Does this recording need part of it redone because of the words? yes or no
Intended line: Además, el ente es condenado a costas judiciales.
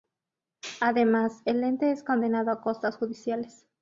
no